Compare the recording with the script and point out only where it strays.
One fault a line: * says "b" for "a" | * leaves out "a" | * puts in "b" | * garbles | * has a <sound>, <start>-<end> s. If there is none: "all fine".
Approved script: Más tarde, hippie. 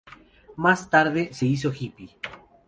* puts in "se hizo"